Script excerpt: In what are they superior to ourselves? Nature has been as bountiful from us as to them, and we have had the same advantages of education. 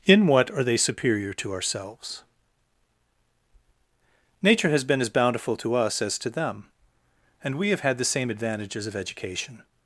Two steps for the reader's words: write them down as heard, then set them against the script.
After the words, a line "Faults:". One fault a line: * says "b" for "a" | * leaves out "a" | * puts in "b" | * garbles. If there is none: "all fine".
In what are they superior to ourselves? Nature has been as bountiful to us as to them, and we have had the same advantages of education.
Faults:
* says "to" for "from"